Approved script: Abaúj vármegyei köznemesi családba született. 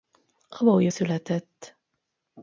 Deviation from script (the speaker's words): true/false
true